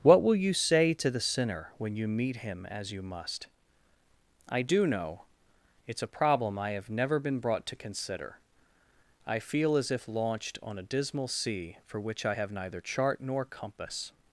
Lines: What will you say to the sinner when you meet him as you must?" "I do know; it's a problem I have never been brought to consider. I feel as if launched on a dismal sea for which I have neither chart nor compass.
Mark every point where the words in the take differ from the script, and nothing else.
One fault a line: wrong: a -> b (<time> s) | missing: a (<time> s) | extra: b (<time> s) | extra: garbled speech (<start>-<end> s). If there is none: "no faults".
no faults